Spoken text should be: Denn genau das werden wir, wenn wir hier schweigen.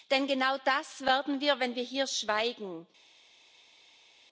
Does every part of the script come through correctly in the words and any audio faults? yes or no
yes